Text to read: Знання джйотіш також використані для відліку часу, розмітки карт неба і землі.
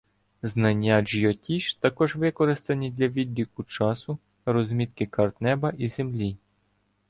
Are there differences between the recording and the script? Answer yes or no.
no